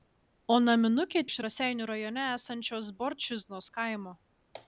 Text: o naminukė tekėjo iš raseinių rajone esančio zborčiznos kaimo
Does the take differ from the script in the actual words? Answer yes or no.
yes